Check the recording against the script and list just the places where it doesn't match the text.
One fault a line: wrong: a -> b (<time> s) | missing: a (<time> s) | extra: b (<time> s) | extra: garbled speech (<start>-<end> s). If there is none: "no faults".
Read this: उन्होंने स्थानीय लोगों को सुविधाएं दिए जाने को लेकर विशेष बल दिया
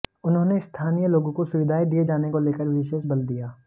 no faults